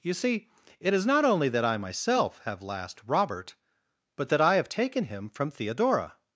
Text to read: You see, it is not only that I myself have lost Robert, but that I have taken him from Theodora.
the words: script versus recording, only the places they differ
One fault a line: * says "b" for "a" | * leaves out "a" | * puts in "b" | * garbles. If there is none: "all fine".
* says "last" for "lost"